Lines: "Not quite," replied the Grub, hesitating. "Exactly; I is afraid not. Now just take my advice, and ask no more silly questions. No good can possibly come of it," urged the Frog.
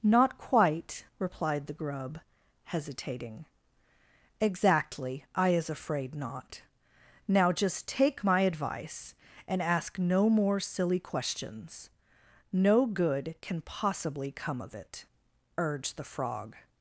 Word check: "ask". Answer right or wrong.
right